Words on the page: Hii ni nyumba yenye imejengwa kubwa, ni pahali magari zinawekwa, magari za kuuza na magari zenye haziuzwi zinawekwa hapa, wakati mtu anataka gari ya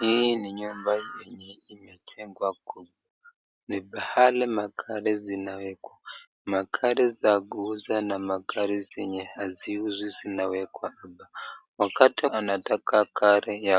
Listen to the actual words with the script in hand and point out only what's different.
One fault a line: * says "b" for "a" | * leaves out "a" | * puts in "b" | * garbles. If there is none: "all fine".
* leaves out "mtu"